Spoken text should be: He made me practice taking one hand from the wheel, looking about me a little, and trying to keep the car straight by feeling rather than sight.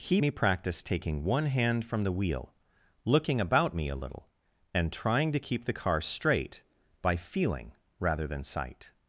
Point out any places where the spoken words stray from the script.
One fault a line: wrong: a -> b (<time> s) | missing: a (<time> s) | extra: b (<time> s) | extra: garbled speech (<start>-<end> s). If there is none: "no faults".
missing: made (0.2 s)